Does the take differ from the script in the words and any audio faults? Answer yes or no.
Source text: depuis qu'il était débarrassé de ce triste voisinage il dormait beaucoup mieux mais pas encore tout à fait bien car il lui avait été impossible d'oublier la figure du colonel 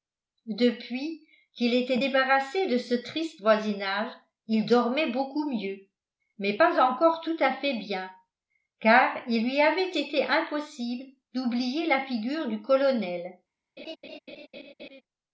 yes